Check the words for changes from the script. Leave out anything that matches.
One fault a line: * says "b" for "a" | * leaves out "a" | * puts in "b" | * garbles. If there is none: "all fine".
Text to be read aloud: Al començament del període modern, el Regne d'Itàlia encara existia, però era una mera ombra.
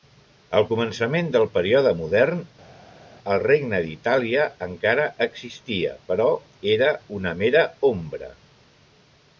all fine